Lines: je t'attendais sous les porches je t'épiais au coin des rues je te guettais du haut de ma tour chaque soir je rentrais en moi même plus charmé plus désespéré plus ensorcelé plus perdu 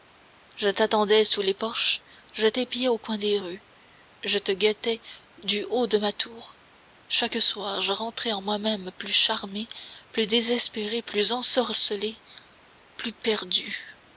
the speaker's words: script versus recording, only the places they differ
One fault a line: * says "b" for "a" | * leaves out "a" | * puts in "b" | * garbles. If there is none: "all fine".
all fine